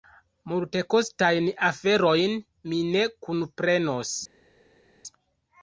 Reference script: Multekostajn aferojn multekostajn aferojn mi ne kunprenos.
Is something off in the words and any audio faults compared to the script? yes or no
yes